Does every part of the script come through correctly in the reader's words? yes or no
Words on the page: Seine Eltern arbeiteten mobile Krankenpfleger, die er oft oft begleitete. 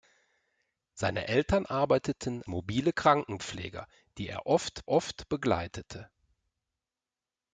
yes